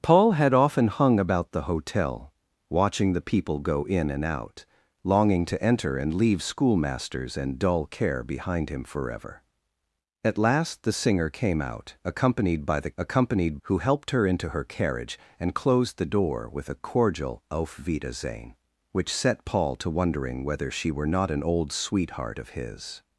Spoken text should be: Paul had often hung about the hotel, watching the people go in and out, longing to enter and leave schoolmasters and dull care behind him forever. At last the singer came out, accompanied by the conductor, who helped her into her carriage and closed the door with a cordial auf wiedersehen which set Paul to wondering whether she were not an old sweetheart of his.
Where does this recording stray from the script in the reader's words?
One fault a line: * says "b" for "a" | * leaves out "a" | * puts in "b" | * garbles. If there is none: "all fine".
* says "accompanied" for "conductor"